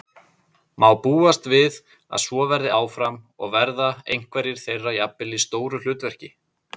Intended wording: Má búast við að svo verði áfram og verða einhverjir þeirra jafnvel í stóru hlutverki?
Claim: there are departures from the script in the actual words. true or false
false